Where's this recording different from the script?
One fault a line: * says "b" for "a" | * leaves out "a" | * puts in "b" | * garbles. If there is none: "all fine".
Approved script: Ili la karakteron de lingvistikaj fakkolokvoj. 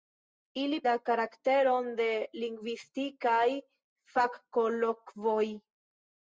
all fine